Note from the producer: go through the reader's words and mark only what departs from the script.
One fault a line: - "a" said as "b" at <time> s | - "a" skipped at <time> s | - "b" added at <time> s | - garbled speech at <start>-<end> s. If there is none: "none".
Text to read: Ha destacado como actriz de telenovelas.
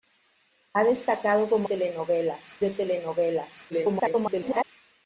- "actriz" said as "telenovelas" at 1.6 s
- garbled speech at 3.7-4.6 s